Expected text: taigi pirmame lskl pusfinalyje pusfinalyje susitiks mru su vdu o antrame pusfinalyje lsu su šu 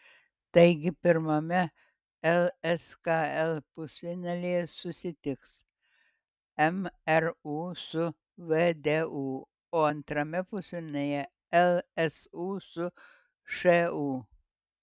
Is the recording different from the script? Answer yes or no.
yes